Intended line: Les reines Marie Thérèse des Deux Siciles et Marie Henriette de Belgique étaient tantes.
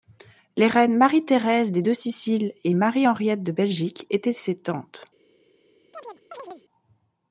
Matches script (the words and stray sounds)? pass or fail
fail